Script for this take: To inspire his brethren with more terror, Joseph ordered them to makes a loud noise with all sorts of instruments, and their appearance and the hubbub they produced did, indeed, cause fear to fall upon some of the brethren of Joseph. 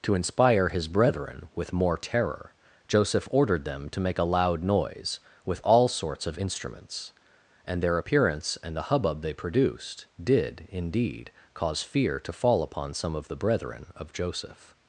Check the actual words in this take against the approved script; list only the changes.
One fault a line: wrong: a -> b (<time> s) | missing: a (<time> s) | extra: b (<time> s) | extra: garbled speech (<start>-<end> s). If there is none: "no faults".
wrong: makes -> make (4.0 s)